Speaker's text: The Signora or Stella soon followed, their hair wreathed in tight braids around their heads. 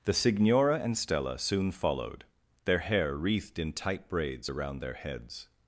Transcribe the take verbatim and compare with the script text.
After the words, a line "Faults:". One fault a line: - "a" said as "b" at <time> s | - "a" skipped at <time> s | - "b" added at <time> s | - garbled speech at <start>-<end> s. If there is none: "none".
The Signora and Stella soon followed, their hair wreathed in tight braids around their heads.
Faults:
- "or" said as "and" at 0.8 s